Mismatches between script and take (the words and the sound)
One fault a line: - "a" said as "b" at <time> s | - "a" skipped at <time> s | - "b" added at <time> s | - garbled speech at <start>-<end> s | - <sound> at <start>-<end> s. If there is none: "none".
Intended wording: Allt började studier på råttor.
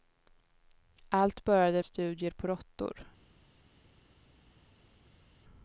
none